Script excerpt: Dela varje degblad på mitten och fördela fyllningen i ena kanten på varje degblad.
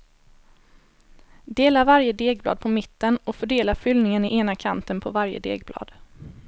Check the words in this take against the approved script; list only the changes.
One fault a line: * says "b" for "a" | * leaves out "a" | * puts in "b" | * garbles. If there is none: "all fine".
all fine